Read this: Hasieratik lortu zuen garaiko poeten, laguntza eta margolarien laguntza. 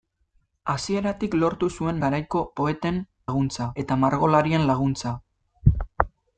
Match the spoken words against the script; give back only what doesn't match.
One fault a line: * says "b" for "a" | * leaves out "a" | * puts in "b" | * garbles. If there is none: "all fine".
all fine